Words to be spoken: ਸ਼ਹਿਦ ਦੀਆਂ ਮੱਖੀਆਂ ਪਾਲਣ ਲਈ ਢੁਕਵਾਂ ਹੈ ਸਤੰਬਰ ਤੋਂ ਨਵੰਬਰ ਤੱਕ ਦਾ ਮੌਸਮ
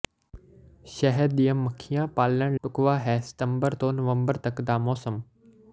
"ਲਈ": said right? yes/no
no